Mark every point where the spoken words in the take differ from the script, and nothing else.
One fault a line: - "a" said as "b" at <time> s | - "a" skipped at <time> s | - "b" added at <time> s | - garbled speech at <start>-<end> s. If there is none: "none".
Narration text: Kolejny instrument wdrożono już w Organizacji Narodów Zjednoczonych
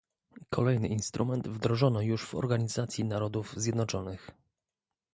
none